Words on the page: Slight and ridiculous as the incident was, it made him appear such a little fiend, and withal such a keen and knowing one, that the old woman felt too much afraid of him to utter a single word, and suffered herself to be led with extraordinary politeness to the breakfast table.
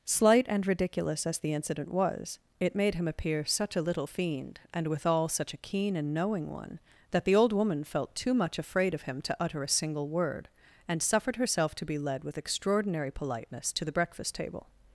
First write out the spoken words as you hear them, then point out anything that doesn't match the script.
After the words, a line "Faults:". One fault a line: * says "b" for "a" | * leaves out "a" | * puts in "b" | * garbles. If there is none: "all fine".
Slight and ridiculous as the incident was, it made him appear such a little fiend, and withal such a keen and knowing one, that the old woman felt too much afraid of him to utter a single word, and suffered herself to be led with extraordinary politeness to the breakfast table.
Faults:
all fine